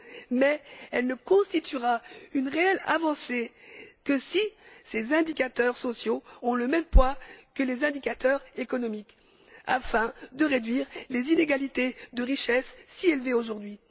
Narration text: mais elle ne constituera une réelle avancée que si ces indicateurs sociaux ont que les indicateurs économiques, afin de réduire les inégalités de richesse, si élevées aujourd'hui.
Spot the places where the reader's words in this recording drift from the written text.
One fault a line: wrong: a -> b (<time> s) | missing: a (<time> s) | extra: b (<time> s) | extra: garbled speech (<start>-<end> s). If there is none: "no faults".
extra: le même poids (6.6 s)